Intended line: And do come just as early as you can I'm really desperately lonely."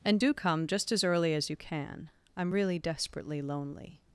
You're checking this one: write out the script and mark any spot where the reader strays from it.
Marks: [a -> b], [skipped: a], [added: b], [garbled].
And do come just as early as you can I'm really desperately lonely."